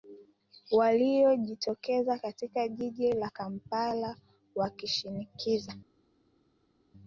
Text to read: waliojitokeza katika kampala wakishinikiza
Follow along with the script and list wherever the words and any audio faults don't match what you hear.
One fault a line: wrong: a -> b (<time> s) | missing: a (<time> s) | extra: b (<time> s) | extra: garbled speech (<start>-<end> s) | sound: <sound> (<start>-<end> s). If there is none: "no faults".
extra: jiji la (2.7 s)